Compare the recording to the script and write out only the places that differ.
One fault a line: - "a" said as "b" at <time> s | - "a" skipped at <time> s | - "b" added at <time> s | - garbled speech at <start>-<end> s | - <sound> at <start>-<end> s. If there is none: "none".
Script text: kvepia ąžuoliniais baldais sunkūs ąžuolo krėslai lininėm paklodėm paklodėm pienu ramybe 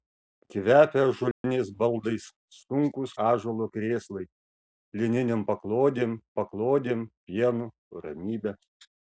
- dropout at 1.3-1.4 s